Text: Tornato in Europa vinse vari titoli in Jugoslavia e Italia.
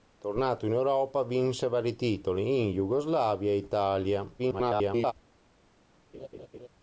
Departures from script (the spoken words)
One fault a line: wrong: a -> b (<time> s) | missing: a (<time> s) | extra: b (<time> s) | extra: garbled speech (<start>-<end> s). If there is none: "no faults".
extra: garbled speech (4.4-5.1 s)